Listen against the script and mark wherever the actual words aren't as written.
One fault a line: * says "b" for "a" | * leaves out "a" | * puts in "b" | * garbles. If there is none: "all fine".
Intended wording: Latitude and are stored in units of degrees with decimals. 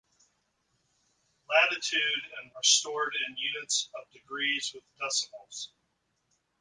all fine